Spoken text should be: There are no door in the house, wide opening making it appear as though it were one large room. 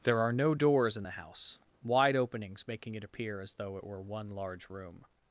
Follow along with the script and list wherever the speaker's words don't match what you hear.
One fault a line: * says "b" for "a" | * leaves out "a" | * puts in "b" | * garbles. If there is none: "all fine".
* says "doors" for "door"
* says "openings" for "opening"